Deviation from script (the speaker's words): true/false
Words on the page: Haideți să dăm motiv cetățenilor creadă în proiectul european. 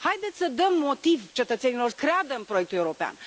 false